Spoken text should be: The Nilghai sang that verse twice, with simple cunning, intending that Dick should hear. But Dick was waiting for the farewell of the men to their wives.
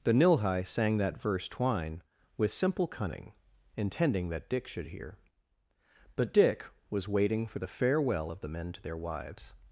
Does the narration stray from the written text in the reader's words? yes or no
yes